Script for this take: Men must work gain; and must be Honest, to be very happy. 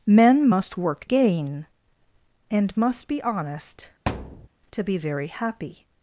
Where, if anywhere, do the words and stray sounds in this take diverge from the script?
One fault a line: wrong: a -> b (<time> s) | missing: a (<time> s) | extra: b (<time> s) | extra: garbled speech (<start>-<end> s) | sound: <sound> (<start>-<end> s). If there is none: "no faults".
sound: thud (4.1-4.5 s)